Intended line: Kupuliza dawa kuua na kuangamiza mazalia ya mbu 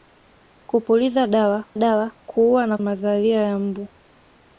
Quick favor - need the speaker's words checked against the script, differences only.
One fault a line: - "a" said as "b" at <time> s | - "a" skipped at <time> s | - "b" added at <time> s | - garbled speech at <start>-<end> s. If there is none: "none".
- "dawa" added at 1.8 s
- "kuangamiza" skipped at 2.8 s